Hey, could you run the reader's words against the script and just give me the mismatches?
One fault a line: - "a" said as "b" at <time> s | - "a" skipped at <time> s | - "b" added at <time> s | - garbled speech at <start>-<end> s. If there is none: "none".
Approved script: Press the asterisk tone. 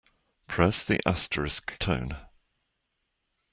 none